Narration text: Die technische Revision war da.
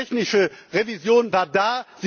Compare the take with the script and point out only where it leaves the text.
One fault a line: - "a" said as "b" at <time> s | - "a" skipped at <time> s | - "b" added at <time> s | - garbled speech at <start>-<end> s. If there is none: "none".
none